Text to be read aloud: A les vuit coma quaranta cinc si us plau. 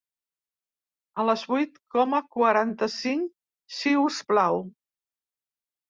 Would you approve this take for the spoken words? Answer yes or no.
yes